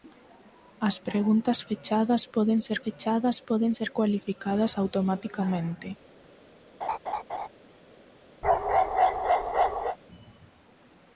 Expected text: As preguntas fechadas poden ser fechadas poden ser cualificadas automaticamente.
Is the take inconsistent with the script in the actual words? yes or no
no